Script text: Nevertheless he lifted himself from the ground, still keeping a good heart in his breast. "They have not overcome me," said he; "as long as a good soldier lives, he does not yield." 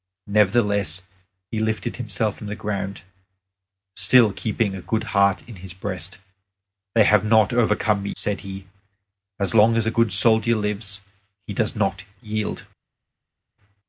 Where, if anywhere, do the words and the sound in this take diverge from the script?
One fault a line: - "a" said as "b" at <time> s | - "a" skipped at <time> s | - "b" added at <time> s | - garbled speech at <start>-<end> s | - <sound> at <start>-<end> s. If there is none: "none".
none